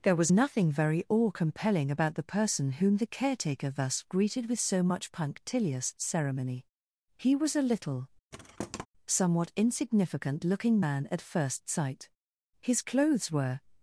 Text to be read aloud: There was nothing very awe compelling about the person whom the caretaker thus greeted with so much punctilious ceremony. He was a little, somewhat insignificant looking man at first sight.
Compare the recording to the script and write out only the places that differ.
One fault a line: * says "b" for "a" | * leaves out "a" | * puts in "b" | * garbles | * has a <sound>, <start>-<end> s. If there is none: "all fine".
* has a thud, 8.3-8.9 s
* puts in "His clothes were"